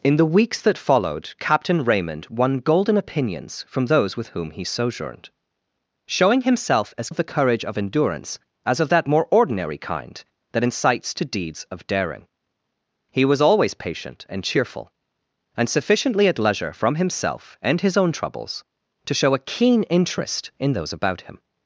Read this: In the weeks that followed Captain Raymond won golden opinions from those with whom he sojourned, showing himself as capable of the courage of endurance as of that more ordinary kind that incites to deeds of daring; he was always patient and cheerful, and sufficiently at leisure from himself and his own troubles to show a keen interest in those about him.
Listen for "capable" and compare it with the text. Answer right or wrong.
wrong